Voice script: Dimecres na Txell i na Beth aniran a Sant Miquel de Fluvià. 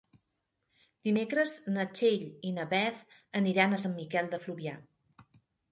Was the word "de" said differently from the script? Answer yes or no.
no